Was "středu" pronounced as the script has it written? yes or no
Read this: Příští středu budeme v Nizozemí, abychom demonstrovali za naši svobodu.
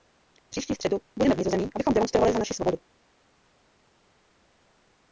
yes